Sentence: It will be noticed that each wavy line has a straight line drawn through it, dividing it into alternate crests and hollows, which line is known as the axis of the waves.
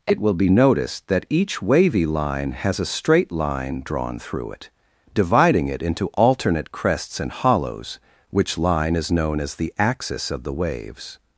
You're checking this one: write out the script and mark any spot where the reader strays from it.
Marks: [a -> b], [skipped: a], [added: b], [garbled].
It will be noticed that each wavy line has a straight line drawn through it, dividing it into alternate crests and hollows, which line is known as the axis of the waves.